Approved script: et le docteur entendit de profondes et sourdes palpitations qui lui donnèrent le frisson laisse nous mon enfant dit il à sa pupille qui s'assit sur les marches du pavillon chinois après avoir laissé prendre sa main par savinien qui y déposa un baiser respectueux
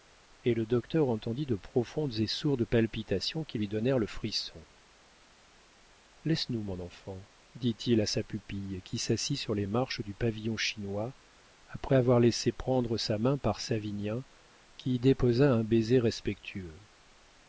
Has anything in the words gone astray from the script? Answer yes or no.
no